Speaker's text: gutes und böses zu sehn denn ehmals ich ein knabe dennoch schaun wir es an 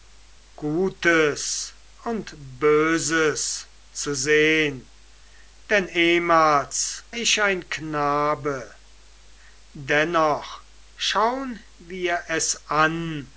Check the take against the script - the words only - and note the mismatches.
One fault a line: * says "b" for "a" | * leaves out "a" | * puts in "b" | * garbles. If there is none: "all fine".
all fine